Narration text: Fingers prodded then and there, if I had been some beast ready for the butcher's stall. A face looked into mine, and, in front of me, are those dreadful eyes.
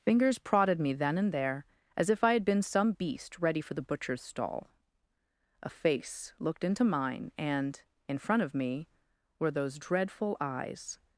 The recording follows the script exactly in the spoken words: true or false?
false